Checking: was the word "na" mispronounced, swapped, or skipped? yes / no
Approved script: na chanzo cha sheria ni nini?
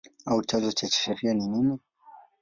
yes